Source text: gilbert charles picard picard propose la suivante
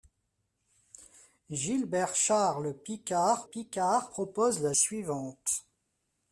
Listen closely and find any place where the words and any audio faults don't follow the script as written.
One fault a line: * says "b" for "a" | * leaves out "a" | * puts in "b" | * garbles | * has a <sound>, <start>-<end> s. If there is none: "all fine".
all fine